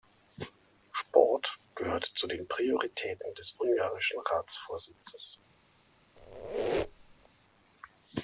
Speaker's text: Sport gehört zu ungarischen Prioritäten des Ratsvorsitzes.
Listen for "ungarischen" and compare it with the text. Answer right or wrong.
wrong